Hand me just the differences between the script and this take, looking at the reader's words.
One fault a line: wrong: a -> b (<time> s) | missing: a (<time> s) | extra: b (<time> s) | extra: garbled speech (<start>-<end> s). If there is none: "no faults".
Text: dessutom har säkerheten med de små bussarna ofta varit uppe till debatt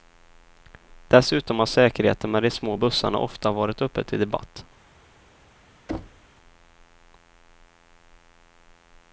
no faults